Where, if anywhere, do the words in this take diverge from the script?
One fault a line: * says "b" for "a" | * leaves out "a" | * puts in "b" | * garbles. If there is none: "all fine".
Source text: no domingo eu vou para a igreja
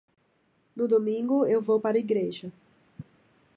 all fine